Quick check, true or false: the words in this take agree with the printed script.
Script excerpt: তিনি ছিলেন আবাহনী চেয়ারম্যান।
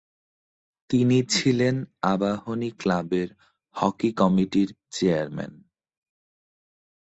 false